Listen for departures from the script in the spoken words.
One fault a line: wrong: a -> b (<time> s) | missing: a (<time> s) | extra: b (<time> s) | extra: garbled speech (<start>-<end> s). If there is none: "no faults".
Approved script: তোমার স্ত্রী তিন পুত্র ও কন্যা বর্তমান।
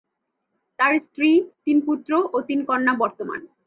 wrong: তোমার -> তার (0.8 s)
extra: তিন (2.4 s)